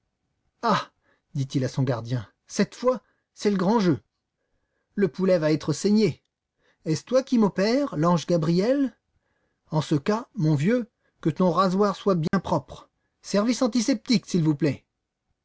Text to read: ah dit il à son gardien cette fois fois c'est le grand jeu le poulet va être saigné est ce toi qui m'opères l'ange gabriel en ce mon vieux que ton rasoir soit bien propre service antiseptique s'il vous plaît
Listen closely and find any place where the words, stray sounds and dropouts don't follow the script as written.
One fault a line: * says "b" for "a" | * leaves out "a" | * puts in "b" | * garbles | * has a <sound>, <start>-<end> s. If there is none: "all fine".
* leaves out "fois"
* puts in "cas"
* has a dropout, 12.3-12.3 s